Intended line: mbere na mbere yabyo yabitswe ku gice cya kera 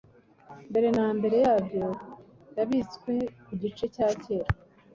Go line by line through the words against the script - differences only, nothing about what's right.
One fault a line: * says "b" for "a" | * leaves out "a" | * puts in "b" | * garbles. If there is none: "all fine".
all fine